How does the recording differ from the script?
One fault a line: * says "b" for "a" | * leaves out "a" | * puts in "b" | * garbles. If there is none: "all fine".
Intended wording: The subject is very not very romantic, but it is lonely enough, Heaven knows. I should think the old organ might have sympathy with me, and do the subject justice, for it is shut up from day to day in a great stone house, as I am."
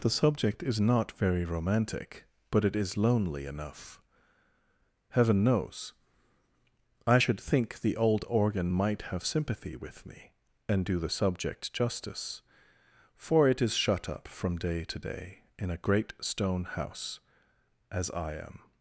* leaves out "very"